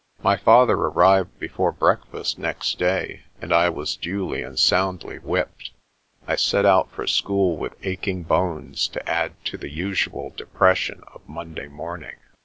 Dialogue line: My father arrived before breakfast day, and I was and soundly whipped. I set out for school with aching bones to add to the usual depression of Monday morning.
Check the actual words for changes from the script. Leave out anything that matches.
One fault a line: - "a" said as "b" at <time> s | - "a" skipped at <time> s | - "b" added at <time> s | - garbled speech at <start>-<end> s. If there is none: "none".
- "next" added at 2.4 s
- "duly" added at 4.0 s